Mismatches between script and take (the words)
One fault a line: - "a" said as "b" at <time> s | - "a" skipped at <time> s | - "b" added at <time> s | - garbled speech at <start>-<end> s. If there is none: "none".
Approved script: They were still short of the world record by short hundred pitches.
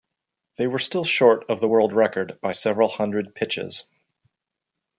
- "short" said as "several" at 2.5 s